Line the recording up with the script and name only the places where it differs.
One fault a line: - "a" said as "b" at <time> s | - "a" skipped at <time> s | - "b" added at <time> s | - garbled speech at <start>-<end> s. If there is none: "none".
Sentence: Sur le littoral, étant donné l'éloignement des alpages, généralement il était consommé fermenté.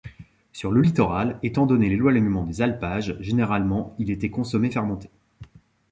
none